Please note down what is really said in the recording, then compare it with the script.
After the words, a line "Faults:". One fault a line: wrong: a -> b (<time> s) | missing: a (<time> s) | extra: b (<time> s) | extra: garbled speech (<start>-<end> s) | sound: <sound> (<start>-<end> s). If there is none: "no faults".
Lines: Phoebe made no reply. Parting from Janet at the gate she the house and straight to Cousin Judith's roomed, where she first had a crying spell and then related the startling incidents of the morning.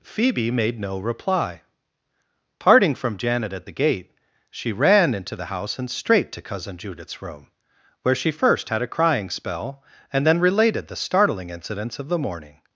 Phoebe made no reply. Parting from Janet at the gate she ran into the house and straight to Cousin Judith's room, where she first had a crying spell and then related the startling incidents of the morning.
Faults:
extra: ran into (4.7 s)
wrong: roomed -> room (7.2 s)